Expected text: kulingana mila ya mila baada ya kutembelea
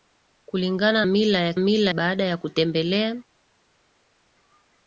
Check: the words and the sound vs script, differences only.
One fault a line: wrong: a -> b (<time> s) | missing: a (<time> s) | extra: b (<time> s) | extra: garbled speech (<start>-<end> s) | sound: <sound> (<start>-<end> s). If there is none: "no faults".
no faults